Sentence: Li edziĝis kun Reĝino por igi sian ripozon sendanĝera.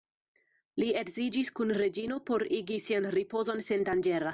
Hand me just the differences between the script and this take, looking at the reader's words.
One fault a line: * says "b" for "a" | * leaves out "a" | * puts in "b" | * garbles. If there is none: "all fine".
all fine